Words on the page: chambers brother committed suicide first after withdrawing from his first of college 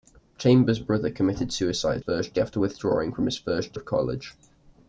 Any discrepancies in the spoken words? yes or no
no